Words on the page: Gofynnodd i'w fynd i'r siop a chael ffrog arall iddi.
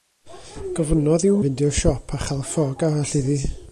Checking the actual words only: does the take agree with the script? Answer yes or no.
yes